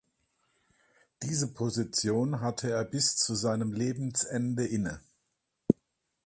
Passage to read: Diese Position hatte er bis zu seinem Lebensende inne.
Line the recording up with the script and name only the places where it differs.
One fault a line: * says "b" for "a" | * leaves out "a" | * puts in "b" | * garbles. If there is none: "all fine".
all fine